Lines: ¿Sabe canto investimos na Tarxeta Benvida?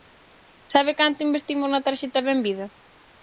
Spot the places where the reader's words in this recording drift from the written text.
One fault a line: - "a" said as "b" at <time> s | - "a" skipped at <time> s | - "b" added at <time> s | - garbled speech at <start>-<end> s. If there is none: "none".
none